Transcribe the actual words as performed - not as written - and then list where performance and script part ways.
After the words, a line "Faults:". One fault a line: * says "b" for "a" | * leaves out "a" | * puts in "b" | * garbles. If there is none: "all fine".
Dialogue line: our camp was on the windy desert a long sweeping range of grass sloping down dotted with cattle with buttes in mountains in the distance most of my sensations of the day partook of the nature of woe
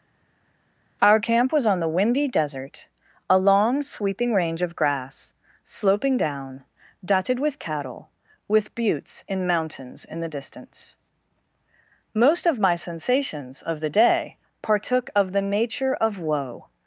our camp was on the windy desert a long sweeping range of grass sloping down dotted with cattle with buttes in mountains in the distance most of my sensations of the day partook of the nature of woe
Faults:
all fine